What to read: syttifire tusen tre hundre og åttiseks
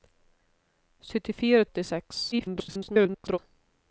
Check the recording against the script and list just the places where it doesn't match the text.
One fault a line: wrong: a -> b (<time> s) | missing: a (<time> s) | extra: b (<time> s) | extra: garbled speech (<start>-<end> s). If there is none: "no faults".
missing: tusen tre hundre (1.7 s)
extra: garbled speech (2.3-3.4 s)